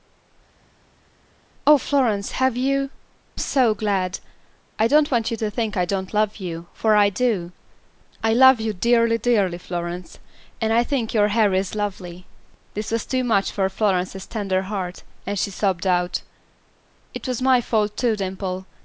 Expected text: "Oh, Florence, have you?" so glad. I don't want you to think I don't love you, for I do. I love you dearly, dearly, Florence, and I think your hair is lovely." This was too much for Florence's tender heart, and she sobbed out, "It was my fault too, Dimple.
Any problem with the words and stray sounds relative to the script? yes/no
no